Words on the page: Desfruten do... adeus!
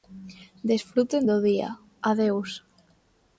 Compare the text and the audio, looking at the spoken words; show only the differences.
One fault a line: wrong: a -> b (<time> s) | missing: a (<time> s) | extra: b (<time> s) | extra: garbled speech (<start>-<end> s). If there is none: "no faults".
extra: día (1.5 s)